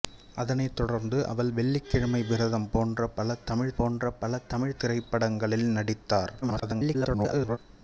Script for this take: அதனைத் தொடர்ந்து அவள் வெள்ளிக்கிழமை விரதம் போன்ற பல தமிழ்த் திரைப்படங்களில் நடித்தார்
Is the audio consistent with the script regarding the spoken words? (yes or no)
no